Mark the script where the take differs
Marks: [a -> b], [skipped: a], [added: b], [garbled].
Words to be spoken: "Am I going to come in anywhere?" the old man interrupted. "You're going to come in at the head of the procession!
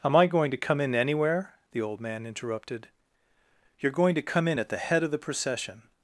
"Am I going to come in anywhere?" the old man interrupted. "You're going to come in at the head of the procession!